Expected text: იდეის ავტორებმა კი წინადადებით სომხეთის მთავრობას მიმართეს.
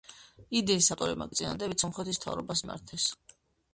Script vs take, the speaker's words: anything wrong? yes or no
no